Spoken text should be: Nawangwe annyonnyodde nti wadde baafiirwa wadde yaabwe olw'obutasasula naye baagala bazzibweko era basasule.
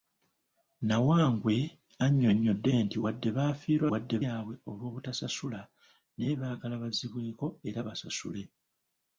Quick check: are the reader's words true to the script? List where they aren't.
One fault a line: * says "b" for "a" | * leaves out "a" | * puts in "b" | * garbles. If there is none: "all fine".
all fine